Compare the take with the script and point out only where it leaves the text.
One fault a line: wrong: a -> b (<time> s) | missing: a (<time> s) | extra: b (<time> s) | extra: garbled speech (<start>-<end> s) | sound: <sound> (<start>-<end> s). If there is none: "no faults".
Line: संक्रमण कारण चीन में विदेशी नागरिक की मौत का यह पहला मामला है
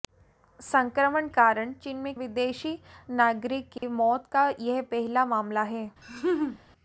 sound: dropout (3.8-3.8 s)
sound: laugh (6.0-6.6 s)